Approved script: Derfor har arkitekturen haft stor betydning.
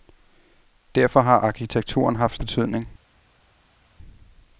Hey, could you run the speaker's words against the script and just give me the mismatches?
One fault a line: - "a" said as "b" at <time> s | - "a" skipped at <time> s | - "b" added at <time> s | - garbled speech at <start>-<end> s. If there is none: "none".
- "stor" skipped at 2.4 s